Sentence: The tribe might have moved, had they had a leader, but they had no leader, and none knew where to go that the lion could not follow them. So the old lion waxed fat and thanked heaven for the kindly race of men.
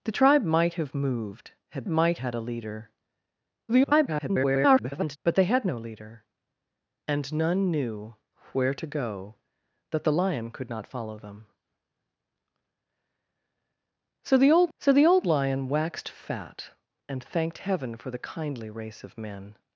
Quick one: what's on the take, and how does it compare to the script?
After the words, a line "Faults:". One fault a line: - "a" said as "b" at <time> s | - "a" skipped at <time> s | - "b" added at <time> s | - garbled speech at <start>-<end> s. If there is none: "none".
The tribe might have moved, had might had a leader, [garbled] but they had no leader, and none knew where to go that the lion could not follow them. So the old so the old lion waxed fat and thanked heaven for the kindly race of men.
Faults:
- "they" said as "might" at 1.9 s
- garbled speech at 3.7-5.2 s
- "so the old" added at 14.8 s